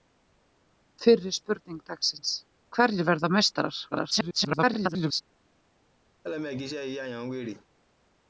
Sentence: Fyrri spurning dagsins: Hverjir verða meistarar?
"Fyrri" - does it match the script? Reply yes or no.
yes